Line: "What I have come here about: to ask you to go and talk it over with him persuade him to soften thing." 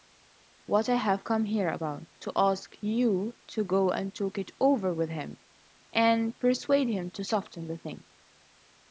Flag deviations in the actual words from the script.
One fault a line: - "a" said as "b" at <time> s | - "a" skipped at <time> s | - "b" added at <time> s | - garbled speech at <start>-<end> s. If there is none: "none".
- "and" added at 5.9 s
- "the" added at 7.7 s